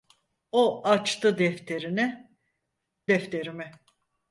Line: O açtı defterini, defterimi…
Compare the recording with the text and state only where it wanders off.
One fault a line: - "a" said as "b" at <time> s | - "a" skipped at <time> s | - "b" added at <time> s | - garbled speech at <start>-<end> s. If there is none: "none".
none